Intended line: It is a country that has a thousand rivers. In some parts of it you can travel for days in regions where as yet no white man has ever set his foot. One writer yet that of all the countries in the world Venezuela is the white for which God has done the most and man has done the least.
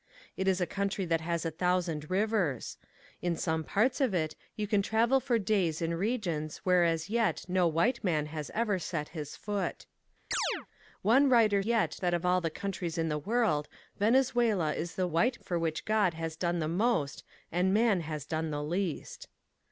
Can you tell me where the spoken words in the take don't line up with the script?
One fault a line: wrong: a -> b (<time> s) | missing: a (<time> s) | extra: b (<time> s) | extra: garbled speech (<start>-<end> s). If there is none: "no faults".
no faults